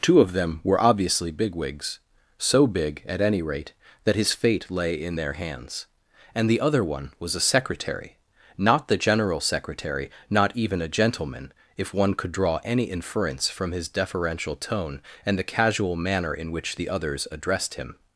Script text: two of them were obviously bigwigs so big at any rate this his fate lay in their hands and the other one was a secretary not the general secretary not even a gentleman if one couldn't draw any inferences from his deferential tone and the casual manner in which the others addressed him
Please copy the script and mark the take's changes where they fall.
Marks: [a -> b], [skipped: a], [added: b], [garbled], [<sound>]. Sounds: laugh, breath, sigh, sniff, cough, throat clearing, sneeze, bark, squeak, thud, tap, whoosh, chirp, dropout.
two of them were obviously bigwigs so big at any rate [this -> that] his fate lay in their hands and the other one was a secretary not the general secretary not even a gentleman if one [couldn't -> could] draw any [inferences -> inference] from his deferential tone and the casual manner in which the others addressed him